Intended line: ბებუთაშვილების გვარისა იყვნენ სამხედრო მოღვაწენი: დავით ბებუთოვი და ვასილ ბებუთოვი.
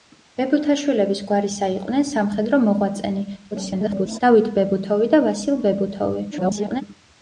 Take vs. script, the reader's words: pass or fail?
fail